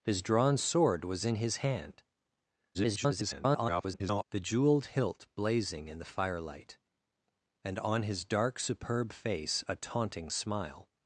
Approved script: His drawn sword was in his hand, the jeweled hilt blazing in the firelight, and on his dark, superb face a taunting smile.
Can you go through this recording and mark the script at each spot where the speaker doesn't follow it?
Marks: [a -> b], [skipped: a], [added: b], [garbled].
His drawn sword was in his hand, [garbled] the jeweled hilt blazing in the firelight, and on his dark, superb face a taunting smile.